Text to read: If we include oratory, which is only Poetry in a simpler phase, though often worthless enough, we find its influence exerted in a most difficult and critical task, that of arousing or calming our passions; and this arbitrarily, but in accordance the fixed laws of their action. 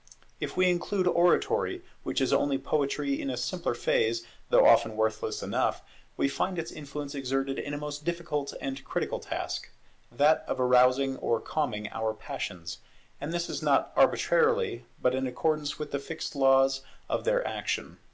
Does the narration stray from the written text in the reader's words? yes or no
yes